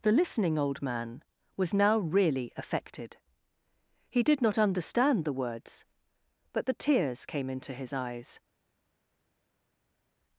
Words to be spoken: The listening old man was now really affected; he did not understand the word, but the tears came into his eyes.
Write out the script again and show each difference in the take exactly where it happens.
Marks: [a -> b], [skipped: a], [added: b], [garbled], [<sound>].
The listening old man was now really affected; he did not understand the [word, -> words] but the tears came into his eyes.